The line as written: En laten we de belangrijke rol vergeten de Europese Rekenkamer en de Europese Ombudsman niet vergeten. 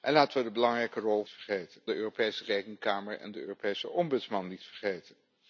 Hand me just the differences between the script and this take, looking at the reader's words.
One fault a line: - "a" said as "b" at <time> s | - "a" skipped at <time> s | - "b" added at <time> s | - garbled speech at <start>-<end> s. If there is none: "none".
none